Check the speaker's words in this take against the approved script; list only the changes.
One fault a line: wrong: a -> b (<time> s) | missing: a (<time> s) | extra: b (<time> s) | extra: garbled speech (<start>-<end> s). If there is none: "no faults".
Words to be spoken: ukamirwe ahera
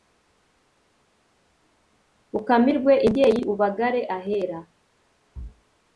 extra: imbyeyi ubagare (3.0 s)